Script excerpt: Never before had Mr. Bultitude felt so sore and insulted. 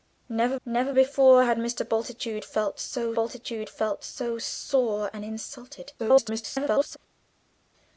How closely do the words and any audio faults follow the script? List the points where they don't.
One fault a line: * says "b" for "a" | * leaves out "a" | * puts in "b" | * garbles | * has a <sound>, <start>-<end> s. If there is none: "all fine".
* puts in "never"
* puts in "bultitude felt so"
* garbles